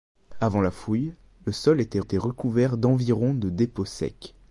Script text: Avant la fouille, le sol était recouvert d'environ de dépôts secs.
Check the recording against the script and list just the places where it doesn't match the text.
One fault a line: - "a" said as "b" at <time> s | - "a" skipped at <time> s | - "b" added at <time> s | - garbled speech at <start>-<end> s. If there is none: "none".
- "était" added at 2.0 s